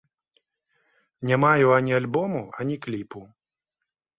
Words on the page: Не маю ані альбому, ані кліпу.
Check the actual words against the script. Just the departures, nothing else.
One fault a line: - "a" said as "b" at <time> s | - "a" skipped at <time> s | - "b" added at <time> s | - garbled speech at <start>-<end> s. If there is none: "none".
none